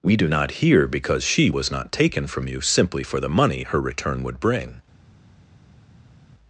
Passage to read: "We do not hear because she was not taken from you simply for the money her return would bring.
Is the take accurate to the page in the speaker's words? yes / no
yes